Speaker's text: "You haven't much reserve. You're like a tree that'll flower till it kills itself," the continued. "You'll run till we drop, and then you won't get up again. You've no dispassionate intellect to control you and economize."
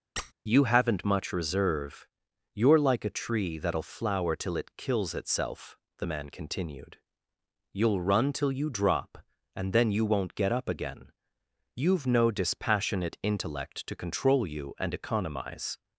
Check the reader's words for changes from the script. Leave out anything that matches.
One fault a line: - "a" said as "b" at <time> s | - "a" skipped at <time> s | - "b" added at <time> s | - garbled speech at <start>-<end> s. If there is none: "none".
- "man" added at 6.0 s
- "we" said as "you" at 8.5 s